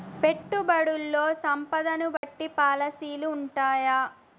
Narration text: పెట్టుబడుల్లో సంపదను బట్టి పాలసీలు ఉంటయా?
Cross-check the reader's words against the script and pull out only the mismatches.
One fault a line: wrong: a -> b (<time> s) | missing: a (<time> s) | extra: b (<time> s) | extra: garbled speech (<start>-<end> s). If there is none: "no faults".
no faults